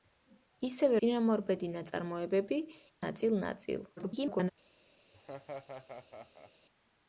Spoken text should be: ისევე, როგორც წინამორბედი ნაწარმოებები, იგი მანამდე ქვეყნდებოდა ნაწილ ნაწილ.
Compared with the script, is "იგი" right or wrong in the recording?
wrong